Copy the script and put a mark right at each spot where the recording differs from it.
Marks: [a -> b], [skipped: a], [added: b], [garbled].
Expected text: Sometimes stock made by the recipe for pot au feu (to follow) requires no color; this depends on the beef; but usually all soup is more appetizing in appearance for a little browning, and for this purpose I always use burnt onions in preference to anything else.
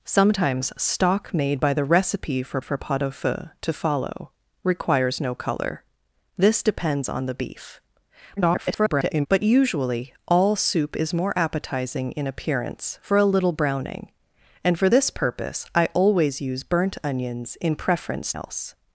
Sometimes stock made by the recipe for [added: for] pot au feu (to follow) requires no color; this depends on the beef; [garbled] but usually all soup is more appetizing in appearance for a little browning, and for this purpose I always use burnt onions in preference [skipped: to anything] else.